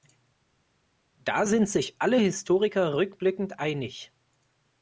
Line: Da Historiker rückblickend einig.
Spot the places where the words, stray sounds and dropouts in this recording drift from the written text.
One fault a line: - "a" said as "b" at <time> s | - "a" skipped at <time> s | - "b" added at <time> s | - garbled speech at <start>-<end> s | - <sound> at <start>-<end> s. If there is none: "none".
- "sind sich alle" added at 1.4 s